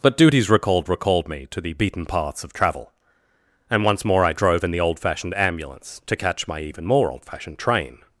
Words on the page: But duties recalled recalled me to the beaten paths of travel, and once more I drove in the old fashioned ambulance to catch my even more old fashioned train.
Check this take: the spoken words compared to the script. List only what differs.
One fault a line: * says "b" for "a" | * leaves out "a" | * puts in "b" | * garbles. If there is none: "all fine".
all fine